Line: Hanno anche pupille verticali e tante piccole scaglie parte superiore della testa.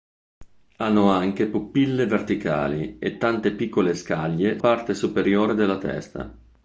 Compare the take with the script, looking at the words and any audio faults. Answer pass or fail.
pass